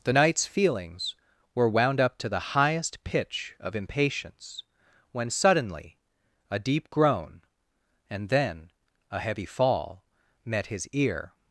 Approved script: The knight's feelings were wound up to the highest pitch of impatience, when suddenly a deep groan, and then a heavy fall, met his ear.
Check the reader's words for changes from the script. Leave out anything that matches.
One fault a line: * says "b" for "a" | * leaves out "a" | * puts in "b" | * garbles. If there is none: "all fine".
all fine